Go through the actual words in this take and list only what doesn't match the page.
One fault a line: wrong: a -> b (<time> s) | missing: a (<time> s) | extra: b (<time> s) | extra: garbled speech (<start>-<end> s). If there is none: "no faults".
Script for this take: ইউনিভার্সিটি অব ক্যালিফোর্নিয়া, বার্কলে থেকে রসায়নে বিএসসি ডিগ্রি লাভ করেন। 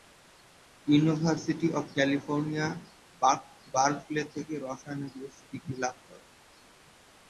no faults